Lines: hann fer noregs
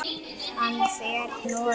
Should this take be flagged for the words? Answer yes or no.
no